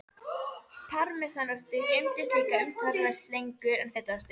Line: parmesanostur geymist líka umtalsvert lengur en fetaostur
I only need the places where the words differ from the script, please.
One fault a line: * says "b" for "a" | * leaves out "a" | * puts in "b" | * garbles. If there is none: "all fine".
all fine